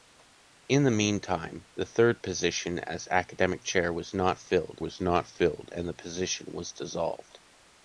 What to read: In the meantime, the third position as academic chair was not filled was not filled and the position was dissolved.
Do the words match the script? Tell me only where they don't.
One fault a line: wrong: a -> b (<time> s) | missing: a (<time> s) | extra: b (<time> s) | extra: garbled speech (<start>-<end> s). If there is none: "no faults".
no faults